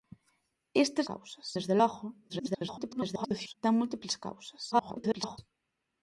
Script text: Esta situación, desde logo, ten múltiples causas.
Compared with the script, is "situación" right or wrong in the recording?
wrong